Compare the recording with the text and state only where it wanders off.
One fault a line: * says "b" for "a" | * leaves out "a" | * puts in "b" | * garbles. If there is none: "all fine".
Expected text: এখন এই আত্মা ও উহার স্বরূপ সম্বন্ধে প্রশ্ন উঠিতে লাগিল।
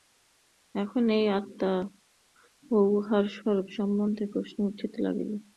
all fine